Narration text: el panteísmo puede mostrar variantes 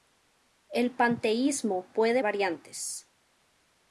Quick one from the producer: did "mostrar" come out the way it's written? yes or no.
no